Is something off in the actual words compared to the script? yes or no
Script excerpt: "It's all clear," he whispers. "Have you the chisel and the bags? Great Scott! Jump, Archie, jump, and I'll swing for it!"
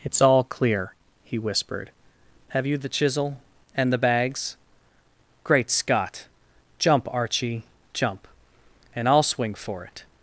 yes